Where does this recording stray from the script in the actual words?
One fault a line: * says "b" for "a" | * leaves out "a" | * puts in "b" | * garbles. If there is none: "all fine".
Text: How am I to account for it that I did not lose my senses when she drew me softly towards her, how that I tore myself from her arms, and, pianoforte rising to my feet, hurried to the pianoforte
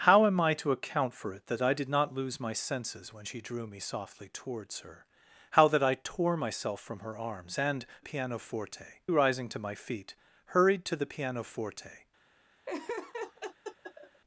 all fine